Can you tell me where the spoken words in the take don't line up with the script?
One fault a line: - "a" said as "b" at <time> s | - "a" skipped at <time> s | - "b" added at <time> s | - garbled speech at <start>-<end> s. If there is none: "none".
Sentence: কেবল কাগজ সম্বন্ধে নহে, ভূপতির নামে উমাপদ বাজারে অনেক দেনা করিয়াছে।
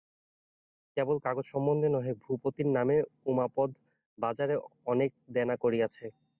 none